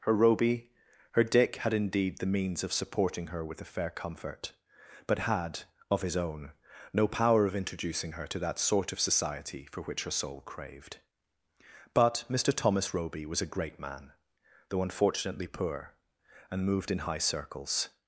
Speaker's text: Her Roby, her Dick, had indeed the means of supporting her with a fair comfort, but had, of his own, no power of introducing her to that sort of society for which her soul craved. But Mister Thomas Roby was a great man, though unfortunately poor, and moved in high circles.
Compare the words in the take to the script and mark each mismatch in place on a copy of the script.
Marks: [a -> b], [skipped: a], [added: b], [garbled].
Her Roby, her Dick, had indeed the means of supporting her with a fair comfort, but had, of his own, no power of introducing her to that sort of society for which her soul craved. But Mister Thomas Roby was a great man, though unfortunately poor, and moved in high circles.